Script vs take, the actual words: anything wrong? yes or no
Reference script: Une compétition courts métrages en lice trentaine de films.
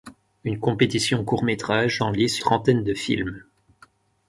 no